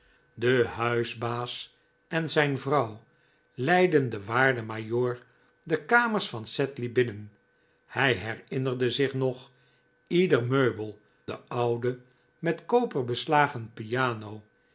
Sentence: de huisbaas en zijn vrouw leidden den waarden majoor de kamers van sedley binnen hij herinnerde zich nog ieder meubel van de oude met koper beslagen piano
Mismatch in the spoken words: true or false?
true